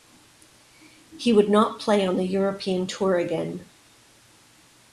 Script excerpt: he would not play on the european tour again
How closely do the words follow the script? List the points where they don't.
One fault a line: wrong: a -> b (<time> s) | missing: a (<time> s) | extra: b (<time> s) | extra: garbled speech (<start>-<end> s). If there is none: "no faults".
no faults